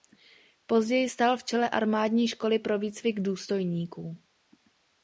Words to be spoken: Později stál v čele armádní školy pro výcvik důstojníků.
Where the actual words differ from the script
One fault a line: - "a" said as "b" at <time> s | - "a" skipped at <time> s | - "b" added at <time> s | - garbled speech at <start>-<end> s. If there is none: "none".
none